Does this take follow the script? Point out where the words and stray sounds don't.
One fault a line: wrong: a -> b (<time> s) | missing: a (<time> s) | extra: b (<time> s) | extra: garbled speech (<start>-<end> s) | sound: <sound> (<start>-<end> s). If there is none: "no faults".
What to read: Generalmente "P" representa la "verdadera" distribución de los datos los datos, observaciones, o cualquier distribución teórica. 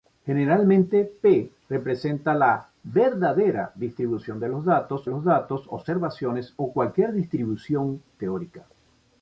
no faults